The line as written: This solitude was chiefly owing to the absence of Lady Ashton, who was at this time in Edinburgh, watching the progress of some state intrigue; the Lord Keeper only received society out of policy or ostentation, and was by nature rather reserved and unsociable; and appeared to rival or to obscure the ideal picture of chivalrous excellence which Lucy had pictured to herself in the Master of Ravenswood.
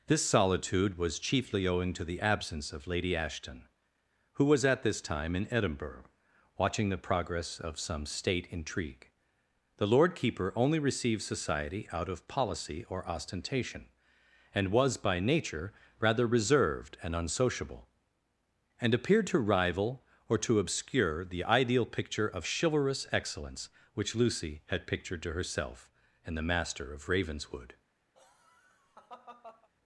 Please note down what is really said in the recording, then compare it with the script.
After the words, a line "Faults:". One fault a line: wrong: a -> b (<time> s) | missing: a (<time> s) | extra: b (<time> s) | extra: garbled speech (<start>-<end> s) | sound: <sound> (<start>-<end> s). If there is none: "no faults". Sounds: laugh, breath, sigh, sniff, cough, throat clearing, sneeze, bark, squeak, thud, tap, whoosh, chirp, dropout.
This solitude was chiefly owing to the absence of Lady Ashton, who was at this time in Edinburgh, watching the progress of some state intrigue; the Lord Keeper only received society out of policy or ostentation, and was by nature rather reserved and unsociable; and appeared to rival or to obscure the ideal picture of chivalrous excellence which Lucy had pictured to herself in the Master of Ravenswood.
Faults:
sound: laugh (28.1-29.7 s)